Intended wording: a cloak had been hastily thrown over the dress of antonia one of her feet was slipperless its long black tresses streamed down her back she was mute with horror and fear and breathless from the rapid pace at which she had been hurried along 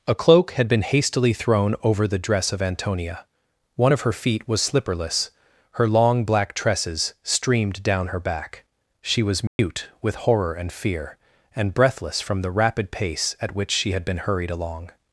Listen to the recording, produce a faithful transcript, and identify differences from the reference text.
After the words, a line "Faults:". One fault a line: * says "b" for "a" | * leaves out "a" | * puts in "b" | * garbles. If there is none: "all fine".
a cloak had been hastily thrown over the dress of antonia one of her feet was slipperless her long black tresses streamed down her back she was mute with horror and fear and breathless from the rapid pace at which she had been hurried along
Faults:
* says "her" for "its"